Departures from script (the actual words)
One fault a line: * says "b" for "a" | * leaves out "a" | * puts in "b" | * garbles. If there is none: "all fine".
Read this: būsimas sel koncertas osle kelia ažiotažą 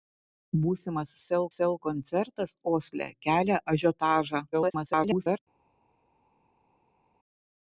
* puts in "sel"
* garbles